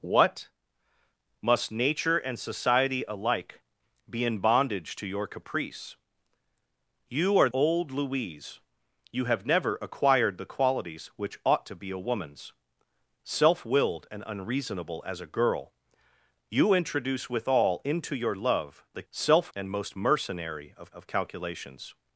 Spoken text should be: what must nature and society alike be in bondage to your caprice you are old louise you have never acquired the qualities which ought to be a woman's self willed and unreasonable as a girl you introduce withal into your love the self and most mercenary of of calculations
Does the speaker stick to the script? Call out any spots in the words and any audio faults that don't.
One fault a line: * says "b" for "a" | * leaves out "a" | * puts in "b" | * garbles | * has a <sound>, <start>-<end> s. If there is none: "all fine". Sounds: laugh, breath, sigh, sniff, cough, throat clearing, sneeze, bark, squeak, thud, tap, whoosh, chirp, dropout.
all fine